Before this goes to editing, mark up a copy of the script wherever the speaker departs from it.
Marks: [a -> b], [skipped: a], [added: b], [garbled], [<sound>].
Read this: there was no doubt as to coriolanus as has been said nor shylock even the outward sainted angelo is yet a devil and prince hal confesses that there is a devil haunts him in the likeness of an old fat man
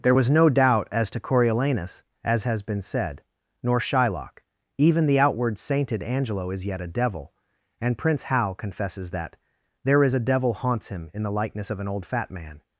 there was no doubt as to coriolanus as has been said nor shylock even the outward sainted angelo is yet a devil and prince hal confesses that there is a devil haunts him in the likeness of an old fat man